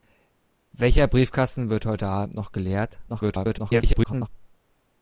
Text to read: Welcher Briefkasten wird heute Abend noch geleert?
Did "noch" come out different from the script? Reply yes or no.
no